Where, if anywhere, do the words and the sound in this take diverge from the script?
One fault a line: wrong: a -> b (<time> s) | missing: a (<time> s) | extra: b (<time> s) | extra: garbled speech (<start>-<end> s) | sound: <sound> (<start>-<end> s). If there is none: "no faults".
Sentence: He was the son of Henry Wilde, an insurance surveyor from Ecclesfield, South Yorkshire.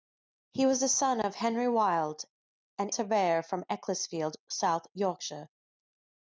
missing: insurance (2.9 s)